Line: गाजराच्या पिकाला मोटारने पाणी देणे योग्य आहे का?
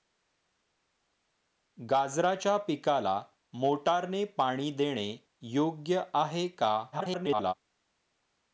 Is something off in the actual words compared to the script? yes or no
yes